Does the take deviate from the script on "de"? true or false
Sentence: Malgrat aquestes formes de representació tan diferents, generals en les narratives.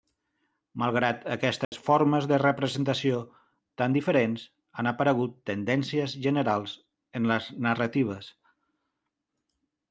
false